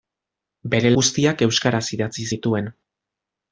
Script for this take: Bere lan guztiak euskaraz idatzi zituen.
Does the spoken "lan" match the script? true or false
false